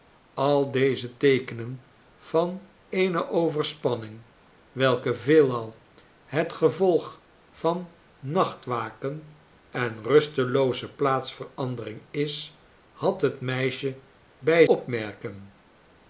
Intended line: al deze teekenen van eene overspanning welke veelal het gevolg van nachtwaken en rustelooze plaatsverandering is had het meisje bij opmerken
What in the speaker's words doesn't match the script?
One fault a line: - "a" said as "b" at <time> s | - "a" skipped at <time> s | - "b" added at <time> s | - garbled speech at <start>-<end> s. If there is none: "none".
none